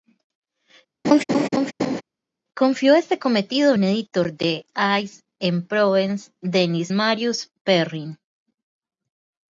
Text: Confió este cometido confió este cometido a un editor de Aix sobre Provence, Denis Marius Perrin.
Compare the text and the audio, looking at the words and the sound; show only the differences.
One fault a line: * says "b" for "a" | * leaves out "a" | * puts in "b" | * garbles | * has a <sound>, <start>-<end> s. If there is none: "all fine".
* has a laugh, 1.0-2.0 s
* leaves out "confió este cometido"
* says "en" for "sobre"